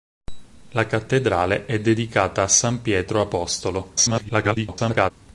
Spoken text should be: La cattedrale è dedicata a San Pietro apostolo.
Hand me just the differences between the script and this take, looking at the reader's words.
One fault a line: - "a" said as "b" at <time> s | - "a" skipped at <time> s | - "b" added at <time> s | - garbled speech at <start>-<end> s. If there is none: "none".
- garbled speech at 4.0-5.1 s